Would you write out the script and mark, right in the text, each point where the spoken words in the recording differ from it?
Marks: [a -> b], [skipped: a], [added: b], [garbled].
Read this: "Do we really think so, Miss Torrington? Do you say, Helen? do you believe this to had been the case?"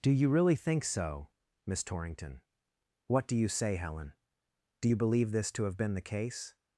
"Do [we -> you] really think so, Miss Torrington? [added: What] Do you say, Helen? do you believe this to [had -> have] been the case?"